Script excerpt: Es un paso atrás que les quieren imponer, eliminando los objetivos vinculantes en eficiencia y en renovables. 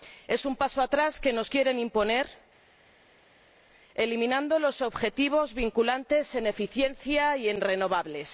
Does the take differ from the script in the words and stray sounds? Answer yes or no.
yes